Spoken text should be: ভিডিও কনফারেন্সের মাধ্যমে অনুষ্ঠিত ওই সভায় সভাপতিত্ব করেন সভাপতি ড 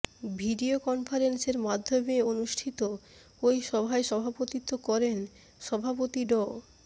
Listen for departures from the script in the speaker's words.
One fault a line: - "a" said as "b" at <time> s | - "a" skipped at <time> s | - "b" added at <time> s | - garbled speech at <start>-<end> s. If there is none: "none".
none